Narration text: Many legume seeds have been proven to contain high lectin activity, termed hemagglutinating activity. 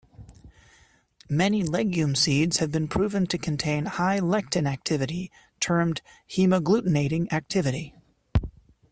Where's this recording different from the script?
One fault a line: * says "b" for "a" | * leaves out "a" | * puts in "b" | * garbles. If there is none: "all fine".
all fine